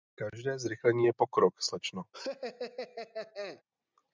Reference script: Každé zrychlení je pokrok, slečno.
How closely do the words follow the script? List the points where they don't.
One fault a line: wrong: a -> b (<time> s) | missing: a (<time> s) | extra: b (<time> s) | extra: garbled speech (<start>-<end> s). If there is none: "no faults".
no faults